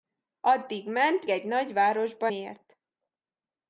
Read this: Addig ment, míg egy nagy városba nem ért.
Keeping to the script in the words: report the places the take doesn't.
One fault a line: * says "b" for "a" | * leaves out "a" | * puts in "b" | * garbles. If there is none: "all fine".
* leaves out "míg"
* leaves out "nem"